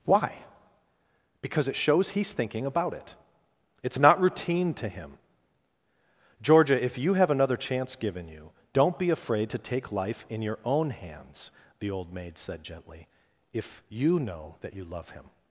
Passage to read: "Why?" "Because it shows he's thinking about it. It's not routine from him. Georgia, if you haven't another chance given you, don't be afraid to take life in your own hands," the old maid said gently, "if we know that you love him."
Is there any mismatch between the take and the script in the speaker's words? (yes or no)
yes